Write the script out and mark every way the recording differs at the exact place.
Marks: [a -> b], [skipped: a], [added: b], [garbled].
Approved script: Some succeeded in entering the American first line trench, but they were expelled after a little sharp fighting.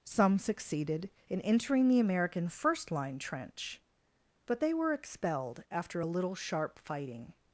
Some succeeded in entering the American first line trench, but they were expelled after a little sharp fighting.